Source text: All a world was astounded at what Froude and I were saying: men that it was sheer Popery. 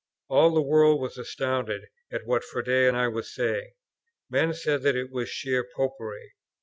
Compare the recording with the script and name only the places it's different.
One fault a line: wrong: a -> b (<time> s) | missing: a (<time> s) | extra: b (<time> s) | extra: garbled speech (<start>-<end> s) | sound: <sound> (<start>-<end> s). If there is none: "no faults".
wrong: a -> the (0.5 s)
extra: said (4.5 s)